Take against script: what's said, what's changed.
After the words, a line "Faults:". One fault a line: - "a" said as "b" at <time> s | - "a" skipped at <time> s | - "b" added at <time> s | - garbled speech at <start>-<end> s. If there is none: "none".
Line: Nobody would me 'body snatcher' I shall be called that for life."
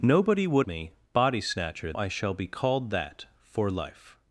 Nobody would me 'body snatcher' I shall be called that for life."
Faults:
none